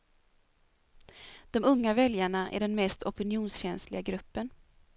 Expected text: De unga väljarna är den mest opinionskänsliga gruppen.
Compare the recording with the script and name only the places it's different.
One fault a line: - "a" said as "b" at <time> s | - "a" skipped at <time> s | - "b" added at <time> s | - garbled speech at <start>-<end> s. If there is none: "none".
none